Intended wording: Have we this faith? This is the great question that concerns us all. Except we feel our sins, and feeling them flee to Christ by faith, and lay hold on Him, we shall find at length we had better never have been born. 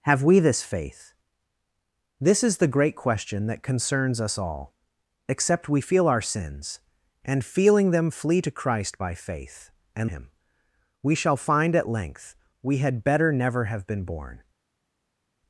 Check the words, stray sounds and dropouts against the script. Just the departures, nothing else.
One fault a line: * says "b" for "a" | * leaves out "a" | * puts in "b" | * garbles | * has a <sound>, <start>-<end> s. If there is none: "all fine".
* leaves out "lay hold on"